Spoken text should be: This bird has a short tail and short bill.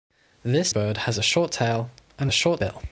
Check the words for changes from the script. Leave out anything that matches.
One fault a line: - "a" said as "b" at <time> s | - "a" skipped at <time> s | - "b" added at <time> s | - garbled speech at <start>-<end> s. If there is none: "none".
none